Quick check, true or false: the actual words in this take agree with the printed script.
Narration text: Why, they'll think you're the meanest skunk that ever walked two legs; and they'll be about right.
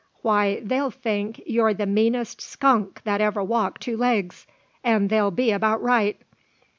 true